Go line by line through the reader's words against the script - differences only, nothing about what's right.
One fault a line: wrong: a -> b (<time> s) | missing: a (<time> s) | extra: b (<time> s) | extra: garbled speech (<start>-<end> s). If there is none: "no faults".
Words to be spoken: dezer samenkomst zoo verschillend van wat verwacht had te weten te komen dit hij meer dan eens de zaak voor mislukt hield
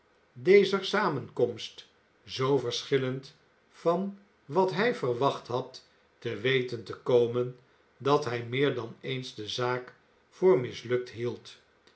extra: hij (4.7 s)
wrong: dit -> dat (8.0 s)